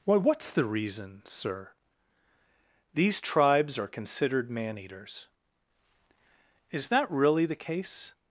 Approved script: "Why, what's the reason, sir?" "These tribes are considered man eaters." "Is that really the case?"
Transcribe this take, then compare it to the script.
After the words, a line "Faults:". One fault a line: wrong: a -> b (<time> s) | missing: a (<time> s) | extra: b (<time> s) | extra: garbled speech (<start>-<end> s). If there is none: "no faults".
"Why, what's the reason, sir?" "These tribes are considered man eaters." "Is that really the case?"
Faults:
no faults